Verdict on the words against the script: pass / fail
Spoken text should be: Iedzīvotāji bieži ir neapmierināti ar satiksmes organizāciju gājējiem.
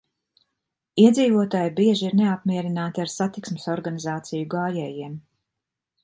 pass